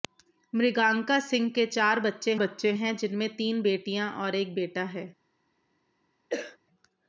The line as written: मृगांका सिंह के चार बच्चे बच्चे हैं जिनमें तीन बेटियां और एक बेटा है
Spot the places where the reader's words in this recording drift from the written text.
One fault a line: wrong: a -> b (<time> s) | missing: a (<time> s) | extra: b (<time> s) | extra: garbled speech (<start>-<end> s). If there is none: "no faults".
no faults